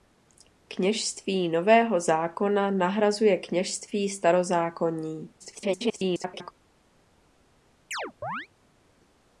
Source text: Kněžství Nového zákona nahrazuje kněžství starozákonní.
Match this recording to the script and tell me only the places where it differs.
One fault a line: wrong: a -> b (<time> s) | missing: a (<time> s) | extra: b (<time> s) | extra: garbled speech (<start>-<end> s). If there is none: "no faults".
extra: garbled speech (5.4-6.5 s)